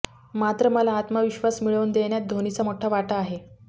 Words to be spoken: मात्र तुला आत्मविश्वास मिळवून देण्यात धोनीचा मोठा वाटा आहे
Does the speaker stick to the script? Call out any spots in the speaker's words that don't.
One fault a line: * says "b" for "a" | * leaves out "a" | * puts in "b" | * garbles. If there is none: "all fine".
* says "मला" for "तुला"